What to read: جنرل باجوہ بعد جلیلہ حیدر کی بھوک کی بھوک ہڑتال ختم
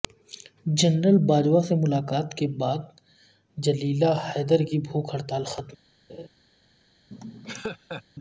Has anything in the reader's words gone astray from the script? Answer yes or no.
yes